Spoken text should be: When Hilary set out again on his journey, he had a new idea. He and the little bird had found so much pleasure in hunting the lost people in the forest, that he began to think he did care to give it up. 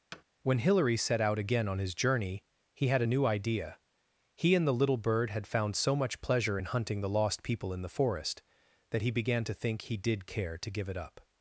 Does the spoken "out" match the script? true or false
true